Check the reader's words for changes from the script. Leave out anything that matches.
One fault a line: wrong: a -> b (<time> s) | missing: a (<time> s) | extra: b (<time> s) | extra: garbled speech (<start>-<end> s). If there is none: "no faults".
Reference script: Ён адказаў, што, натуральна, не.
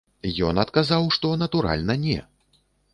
no faults